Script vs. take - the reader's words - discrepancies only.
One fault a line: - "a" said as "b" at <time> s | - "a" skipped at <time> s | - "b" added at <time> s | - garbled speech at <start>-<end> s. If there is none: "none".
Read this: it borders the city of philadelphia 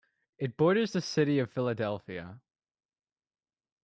none